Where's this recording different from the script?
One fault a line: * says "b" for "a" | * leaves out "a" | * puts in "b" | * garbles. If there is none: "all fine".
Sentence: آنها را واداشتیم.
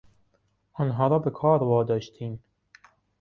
* puts in "به کار"